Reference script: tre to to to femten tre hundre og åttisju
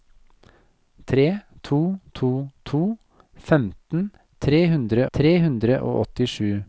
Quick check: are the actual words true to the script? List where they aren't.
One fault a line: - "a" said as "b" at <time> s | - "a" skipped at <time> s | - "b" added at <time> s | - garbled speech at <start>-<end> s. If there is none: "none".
- "tre hundre" added at 5.1 s